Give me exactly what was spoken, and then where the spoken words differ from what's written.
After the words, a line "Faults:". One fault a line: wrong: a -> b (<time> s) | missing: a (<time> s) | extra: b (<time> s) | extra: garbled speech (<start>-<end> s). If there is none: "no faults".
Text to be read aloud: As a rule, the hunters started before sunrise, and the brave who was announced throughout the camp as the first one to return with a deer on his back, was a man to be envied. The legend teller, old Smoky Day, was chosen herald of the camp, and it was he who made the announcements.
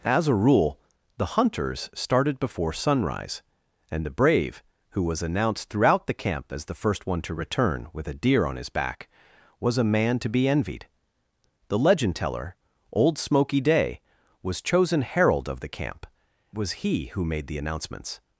As a rule, the hunters started before sunrise, and the brave who was announced throughout the camp as the first one to return with a deer on his back, was a man to be envied. The legend teller, old Smoky Day, was chosen herald of the camp, was he who made the announcements.
Faults:
missing: and it (16.1 s)